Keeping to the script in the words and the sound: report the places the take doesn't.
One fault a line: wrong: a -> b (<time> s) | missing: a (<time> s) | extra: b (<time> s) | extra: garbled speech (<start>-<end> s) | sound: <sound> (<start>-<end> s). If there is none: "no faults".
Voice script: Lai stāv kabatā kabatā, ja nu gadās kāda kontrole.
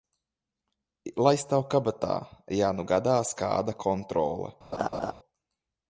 missing: kabatā (2.1 s)
sound: laugh (4.7-5.1 s)